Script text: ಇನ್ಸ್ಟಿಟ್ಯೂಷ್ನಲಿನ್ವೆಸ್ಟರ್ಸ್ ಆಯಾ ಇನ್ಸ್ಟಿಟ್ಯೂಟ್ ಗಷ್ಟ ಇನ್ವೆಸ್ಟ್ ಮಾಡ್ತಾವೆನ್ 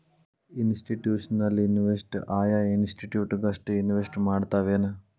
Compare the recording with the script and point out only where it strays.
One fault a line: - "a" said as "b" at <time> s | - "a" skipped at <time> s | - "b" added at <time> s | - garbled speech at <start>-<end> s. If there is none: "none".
none